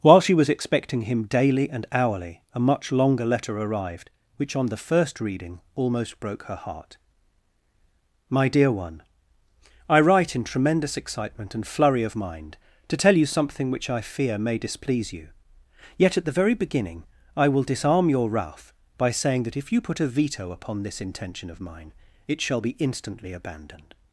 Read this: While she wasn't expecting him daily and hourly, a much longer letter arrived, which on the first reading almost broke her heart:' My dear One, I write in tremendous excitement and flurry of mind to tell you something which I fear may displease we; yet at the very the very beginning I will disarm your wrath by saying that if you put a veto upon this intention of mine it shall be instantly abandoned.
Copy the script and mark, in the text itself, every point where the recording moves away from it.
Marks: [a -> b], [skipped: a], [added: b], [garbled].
While she [wasn't -> was] expecting him daily and hourly, a much longer letter arrived, which on the first reading almost broke her heart:' My dear One, I write in tremendous excitement and flurry of mind to tell you something which I fear may displease [we; -> you] yet at the very [skipped: the very] beginning I will disarm your wrath by saying that if you put a veto upon this intention of mine it shall be instantly abandoned.